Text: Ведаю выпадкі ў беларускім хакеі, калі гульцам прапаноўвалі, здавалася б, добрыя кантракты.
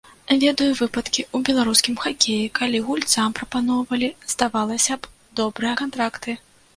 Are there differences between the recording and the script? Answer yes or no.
no